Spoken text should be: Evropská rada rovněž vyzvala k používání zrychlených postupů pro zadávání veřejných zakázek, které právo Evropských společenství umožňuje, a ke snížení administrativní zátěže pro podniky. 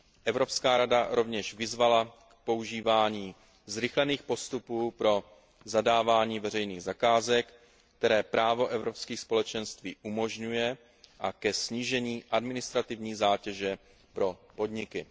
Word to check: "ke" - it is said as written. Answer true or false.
true